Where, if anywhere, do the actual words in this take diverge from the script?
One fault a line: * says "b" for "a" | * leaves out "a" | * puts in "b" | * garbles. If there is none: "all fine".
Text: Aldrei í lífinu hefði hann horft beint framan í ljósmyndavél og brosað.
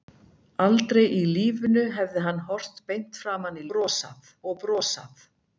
* says "brosað" for "ljósmyndavél"